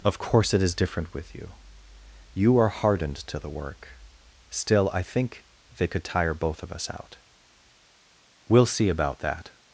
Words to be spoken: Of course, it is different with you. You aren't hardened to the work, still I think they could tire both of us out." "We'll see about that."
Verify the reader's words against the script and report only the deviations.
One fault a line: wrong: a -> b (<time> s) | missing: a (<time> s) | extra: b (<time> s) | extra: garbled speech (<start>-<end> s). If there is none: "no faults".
wrong: aren't -> are (2.6 s)